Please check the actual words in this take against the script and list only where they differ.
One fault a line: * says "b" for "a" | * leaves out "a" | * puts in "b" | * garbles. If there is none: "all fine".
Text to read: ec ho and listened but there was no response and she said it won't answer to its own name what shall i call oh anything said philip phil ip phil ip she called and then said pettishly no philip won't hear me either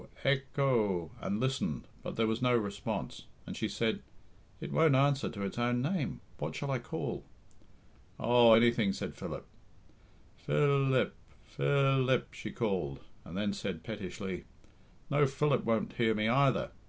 all fine